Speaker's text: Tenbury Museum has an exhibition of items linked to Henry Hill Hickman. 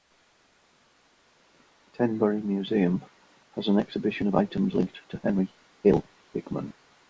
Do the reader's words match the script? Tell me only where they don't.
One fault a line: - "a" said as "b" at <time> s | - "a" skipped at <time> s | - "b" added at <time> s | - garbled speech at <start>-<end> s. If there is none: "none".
none